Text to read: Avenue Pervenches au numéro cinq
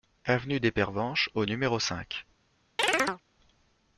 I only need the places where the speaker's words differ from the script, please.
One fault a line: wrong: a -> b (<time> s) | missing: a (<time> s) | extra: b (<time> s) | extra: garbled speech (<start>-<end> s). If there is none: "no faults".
extra: des (0.6 s)